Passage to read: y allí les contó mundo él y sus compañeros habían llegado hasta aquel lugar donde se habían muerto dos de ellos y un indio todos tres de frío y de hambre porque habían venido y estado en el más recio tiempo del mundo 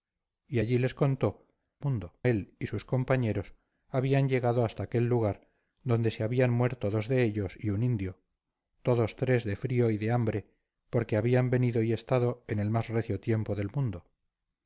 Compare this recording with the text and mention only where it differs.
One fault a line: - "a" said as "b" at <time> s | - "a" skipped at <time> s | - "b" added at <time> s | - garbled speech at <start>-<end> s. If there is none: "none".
none